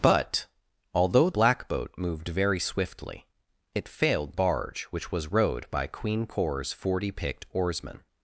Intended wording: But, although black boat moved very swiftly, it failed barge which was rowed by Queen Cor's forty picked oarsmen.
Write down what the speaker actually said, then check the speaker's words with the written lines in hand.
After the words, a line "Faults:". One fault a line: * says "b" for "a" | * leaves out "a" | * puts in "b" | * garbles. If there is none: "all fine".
But, although black boat moved very swiftly, it failed barge which was rowed by Queen Cor's forty picked oarsmen.
Faults:
all fine